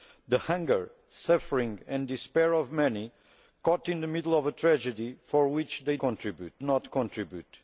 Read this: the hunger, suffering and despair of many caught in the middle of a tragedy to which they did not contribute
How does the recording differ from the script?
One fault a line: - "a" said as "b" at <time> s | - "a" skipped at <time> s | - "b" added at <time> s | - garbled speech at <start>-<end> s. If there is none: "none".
- "did" said as "contribute" at 6.0 s